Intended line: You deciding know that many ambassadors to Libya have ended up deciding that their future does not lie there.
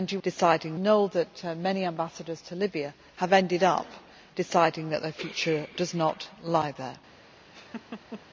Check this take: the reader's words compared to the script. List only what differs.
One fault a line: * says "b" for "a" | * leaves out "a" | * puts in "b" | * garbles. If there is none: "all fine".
all fine